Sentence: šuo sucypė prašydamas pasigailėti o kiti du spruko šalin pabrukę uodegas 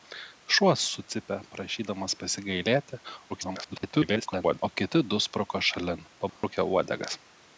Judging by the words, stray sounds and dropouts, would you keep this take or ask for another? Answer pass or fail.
fail